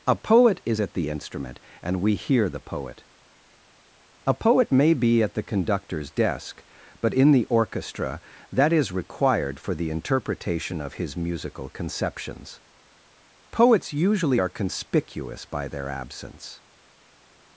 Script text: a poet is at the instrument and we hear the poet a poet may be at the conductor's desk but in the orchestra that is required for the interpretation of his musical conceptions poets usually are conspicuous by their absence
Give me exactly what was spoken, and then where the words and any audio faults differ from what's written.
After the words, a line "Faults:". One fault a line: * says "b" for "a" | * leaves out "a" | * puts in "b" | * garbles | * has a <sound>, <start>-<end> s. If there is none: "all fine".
a poet is at the instrument and we hear the poet a poet may be at the conductor's desk but in the orchestra that is required for the interpretation of his musical conceptions poets usually are conspicuous by their absence
Faults:
all fine